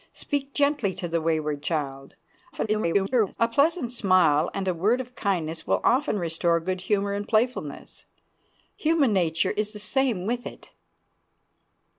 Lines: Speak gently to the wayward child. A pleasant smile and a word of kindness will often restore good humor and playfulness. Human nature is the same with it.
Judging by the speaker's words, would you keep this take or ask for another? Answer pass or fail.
fail